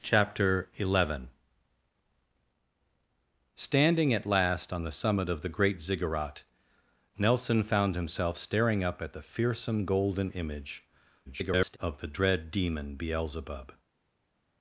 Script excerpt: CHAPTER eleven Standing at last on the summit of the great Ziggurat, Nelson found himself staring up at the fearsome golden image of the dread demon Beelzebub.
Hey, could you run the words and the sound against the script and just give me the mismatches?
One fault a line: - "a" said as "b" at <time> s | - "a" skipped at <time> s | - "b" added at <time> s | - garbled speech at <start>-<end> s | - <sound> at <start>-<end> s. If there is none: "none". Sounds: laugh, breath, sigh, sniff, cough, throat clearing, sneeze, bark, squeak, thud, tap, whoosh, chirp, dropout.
- garbled speech at 11.3-11.8 s